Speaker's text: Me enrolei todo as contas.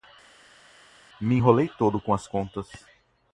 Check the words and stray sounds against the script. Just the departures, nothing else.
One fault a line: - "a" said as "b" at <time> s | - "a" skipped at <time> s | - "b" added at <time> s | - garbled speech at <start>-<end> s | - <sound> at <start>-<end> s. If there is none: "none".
- "com" added at 2.0 s